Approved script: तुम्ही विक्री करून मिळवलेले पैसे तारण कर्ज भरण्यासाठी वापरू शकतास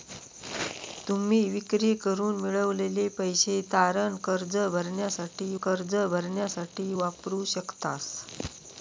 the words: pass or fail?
fail